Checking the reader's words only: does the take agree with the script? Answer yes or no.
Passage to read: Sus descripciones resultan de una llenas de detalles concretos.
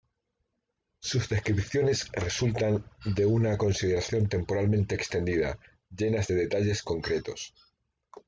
no